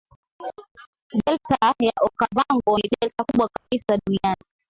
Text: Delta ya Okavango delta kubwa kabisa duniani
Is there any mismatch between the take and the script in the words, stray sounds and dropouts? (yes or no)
yes